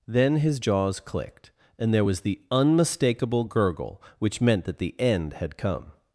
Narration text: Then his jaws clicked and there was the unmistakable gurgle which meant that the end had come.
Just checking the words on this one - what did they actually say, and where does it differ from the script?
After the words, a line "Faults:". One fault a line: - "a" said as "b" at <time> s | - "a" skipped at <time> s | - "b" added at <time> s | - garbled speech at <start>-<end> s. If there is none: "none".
Then his jaws clicked and there was the unmistakable gurgle which meant that the end had come.
Faults:
none